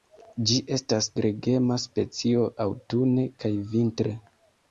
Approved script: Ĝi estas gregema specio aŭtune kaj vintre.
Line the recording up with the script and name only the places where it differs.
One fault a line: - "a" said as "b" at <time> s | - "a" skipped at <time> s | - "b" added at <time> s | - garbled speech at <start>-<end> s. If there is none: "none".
none